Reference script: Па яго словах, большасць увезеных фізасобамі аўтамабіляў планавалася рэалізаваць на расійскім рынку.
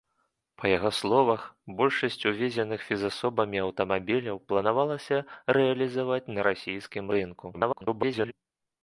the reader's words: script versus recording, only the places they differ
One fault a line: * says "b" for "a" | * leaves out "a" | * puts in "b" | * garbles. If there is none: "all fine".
* garbles